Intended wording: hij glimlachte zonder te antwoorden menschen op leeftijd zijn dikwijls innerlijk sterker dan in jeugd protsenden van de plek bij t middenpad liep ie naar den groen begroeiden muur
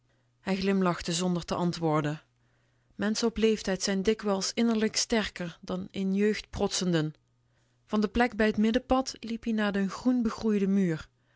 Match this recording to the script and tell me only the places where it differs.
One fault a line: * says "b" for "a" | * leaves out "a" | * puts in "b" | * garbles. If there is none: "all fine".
all fine